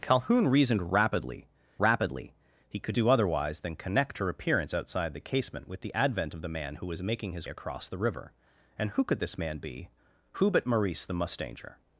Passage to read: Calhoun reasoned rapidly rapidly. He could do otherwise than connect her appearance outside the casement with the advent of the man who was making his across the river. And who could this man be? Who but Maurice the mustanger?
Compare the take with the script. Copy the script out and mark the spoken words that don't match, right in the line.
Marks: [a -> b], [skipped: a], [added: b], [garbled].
Calhoun reasoned rapidly rapidly. He could do otherwise than connect her appearance outside the casement with the advent of the man who was making his across the river. And who could this man be? Who but Maurice the mustanger?